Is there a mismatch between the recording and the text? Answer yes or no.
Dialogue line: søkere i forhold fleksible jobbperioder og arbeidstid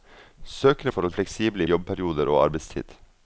no